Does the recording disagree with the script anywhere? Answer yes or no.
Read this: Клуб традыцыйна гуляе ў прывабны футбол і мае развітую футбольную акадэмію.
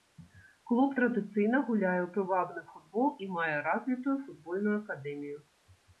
no